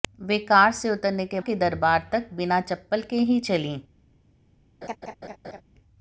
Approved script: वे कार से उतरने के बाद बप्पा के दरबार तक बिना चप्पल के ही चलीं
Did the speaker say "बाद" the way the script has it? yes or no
no